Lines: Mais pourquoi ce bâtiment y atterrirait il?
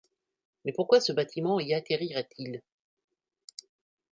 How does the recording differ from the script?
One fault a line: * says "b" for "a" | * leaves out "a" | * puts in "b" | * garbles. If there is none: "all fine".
all fine